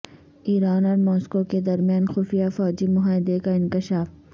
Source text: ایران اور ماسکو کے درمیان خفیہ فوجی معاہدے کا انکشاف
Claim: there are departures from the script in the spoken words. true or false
false